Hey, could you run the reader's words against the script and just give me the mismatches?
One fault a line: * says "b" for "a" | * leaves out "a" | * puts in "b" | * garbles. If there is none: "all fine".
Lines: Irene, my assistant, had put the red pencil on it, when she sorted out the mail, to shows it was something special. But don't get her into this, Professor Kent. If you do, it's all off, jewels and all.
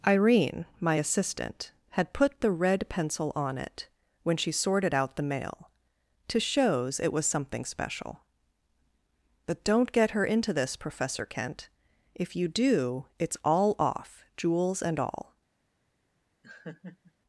all fine